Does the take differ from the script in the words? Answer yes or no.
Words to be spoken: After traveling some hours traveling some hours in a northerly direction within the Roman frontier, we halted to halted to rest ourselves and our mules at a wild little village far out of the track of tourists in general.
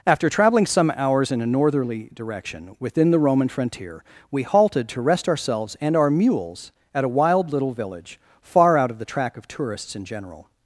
yes